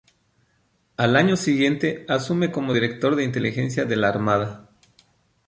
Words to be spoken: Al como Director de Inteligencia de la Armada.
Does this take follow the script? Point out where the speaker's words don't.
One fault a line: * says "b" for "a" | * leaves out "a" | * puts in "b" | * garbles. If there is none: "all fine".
* puts in "año siguiente asume"